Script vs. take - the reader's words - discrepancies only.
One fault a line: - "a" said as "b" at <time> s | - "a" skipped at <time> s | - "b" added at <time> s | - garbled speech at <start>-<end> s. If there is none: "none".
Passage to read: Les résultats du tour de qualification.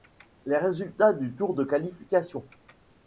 none